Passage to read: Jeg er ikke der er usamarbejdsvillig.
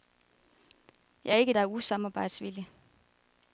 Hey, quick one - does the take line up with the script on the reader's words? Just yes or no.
yes